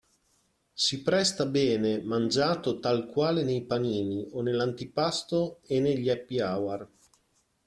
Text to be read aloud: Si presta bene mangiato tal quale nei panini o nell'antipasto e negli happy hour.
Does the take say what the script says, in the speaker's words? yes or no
yes